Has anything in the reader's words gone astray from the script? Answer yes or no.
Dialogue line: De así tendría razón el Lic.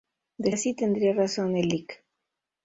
no